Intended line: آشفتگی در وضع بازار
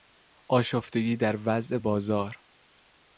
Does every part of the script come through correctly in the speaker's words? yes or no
yes